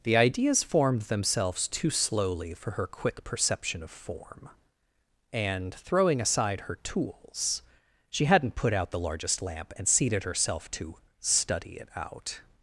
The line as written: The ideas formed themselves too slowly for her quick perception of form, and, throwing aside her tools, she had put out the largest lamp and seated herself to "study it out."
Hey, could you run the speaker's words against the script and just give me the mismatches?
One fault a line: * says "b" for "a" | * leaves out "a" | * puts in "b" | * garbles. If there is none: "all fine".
* says "hadn't" for "had"